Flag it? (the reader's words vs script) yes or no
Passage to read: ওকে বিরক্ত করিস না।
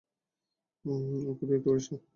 no